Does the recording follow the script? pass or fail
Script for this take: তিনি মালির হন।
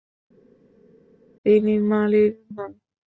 pass